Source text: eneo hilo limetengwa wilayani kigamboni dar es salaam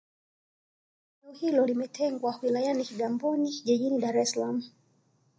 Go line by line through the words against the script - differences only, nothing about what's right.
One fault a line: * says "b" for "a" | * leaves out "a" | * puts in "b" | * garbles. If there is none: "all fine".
* puts in "jijini"